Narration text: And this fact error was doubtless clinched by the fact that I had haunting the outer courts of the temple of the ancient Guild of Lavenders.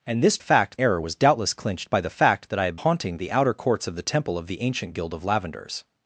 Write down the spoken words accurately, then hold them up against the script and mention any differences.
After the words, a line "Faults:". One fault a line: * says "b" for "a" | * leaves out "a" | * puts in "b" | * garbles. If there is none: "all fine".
And this fact error was doubtless clinched by the fact that I had haunting the outer courts of the temple of the ancient Guild of Lavenders.
Faults:
all fine